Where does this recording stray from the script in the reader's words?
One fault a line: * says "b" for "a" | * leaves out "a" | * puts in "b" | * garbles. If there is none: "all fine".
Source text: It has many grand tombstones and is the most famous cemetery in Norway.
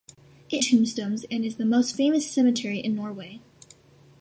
* leaves out "has many grand"